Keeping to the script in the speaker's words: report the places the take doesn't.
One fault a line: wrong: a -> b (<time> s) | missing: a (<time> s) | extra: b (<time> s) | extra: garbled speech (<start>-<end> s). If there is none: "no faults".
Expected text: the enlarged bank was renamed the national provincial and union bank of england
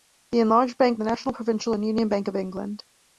missing: was renamed (1.0 s)